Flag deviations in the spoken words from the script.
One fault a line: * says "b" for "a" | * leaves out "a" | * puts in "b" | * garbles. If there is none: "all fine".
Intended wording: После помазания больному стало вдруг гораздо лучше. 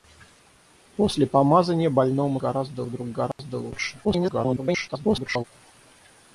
* says "гораздо" for "стало"
* garbles